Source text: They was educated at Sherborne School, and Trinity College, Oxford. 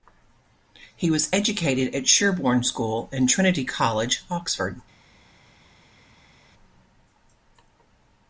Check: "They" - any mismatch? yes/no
yes